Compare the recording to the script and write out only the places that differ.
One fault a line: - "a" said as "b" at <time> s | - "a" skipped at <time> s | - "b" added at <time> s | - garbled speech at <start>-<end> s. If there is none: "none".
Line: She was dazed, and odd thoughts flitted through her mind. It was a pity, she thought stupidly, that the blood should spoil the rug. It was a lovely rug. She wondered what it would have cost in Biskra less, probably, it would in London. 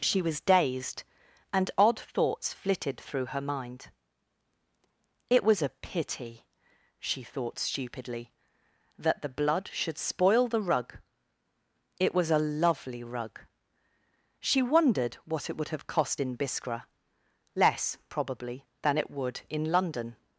- "than" added at 18.8 s